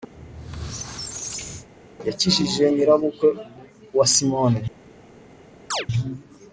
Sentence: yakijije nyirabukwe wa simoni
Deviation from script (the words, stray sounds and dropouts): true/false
true